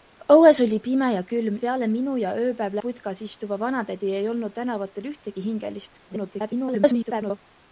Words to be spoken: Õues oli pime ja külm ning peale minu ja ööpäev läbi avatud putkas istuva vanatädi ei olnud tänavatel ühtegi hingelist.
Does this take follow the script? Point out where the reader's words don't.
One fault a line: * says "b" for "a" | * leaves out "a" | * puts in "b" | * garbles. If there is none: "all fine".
* leaves out "ning"
* leaves out "läbi avatud"
* garbles